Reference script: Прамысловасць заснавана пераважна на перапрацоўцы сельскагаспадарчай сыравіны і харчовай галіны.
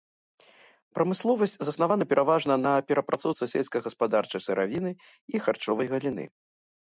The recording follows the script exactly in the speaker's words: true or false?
true